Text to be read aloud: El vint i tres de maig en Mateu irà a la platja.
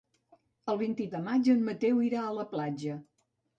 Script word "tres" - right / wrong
wrong